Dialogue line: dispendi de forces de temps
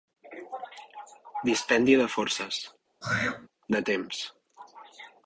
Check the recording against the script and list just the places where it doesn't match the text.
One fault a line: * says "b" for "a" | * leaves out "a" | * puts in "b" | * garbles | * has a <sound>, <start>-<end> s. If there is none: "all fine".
* has a throat clearing, 3.0-3.5 s